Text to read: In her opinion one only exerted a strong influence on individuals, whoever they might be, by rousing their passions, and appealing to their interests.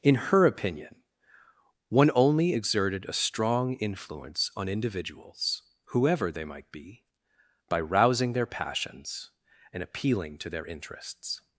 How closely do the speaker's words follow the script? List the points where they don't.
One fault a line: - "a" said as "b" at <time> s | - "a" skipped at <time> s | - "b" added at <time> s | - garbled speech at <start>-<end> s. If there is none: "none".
none